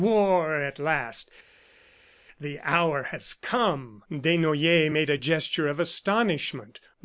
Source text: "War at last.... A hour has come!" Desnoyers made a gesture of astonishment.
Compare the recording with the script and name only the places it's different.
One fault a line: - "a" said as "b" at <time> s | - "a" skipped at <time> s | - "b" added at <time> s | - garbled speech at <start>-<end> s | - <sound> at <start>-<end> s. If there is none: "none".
- "A" said as "The" at 2.4 s